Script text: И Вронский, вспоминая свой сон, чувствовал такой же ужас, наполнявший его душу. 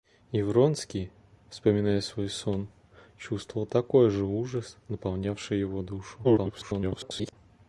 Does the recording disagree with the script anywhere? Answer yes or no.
yes